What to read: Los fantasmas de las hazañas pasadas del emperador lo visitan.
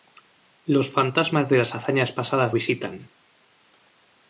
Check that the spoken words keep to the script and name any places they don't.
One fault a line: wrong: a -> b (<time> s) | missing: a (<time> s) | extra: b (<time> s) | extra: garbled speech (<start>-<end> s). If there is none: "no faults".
missing: del emperador lo (2.5 s)